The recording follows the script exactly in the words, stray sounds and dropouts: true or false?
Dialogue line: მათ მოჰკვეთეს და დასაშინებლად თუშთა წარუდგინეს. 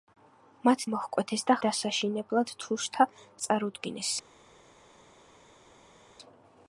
true